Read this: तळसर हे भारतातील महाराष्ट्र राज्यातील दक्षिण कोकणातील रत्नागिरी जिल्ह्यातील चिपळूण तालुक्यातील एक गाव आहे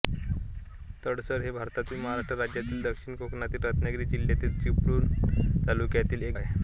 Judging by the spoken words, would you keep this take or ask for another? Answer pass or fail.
fail